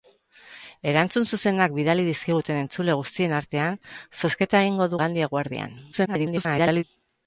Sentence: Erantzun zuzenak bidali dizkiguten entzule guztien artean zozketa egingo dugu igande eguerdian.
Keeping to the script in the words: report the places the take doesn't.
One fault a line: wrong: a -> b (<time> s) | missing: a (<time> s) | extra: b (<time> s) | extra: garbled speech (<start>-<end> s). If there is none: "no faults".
missing: dugu (4.9 s)
extra: garbled speech (5.9-6.8 s)